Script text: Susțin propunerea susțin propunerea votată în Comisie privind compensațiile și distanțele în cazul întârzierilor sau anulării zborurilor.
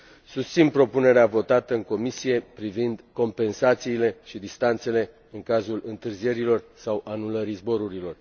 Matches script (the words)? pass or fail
fail